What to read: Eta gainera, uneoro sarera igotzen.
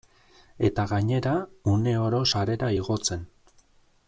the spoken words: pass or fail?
pass